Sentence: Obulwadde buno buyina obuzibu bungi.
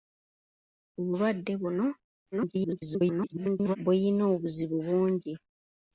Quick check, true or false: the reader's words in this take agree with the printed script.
false